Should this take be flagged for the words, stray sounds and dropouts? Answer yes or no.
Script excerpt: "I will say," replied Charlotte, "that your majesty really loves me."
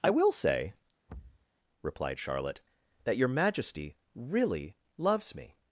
yes